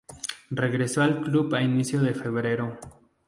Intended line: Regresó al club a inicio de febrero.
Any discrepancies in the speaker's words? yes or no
no